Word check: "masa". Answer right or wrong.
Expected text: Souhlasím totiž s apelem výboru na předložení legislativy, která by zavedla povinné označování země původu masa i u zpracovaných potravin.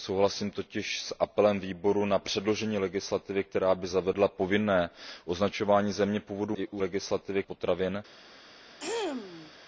wrong